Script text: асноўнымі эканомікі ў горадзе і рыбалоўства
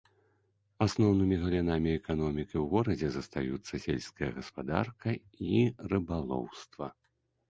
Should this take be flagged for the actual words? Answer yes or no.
yes